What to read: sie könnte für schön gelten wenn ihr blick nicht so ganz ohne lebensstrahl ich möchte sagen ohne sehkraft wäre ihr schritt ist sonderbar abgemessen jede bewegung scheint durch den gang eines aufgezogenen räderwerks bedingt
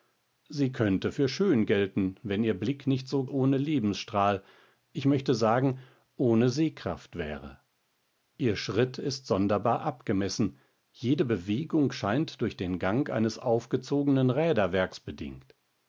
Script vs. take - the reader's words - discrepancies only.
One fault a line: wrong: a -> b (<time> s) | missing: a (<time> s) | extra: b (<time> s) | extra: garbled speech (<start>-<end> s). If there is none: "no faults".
missing: ganz (3.2 s)